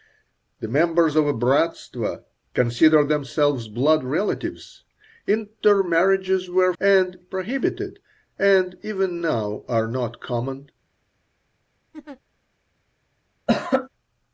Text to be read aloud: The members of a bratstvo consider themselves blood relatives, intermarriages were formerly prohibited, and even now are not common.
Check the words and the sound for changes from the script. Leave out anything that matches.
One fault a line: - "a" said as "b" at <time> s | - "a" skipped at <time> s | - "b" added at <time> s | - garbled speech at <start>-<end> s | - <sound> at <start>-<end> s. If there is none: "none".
- "formerly" said as "and" at 6.8 s
- laugh at 11.9-12.2 s
- cough at 13.5-13.9 s